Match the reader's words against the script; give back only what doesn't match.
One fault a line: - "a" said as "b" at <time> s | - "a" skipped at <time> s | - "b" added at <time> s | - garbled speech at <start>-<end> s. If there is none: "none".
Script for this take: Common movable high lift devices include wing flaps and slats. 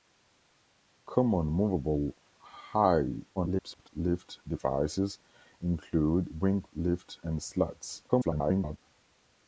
- garbled speech at 3.4-3.9 s
- "flaps" said as "lift" at 6.8 s
- garbled speech at 8.1-8.8 s